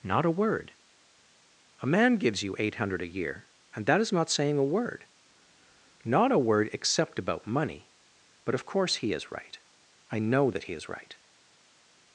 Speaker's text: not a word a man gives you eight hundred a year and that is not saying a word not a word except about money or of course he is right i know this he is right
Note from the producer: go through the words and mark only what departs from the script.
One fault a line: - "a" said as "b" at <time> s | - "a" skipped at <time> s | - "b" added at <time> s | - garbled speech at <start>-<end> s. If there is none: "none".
- "or" said as "but" at 8.4 s
- "this" said as "that" at 10.5 s